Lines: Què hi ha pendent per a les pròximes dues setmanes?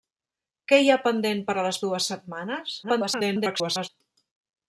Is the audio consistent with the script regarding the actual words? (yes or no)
no